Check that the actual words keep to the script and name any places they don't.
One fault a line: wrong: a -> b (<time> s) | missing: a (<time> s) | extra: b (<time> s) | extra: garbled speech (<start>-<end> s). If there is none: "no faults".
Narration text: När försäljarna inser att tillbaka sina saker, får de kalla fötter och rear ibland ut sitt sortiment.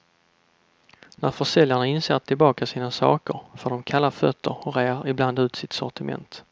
no faults